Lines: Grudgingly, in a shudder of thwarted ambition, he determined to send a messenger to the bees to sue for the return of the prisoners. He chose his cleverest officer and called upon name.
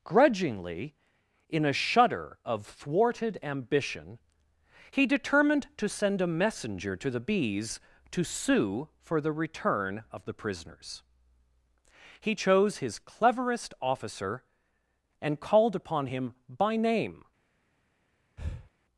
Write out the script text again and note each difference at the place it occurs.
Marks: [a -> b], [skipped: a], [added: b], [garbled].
Grudgingly, in a shudder of thwarted ambition, he determined to send a messenger to the bees to sue for the return of the prisoners. He chose his cleverest officer and called upon [added: him by] name.